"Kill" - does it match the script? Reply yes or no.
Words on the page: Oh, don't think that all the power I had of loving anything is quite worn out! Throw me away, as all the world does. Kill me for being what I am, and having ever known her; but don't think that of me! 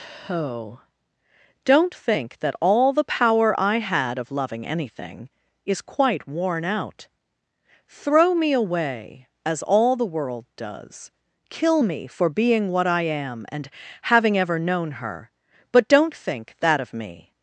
yes